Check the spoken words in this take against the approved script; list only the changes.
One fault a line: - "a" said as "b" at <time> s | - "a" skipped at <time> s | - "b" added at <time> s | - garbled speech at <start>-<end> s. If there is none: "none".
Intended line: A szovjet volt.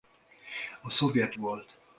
none